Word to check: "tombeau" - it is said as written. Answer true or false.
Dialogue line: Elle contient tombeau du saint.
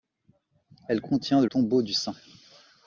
true